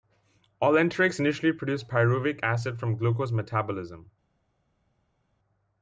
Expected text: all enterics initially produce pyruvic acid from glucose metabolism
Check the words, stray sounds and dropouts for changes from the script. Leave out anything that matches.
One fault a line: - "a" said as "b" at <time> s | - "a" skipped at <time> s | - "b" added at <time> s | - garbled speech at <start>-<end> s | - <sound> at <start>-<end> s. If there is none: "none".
none